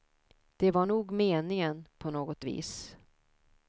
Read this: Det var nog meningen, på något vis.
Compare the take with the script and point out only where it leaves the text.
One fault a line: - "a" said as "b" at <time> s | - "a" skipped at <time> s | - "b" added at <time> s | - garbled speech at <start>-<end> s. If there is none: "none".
none